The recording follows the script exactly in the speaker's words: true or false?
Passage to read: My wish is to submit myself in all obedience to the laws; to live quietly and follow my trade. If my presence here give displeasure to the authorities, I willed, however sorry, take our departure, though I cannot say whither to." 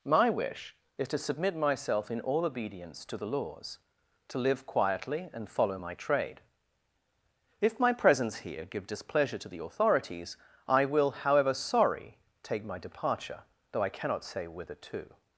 false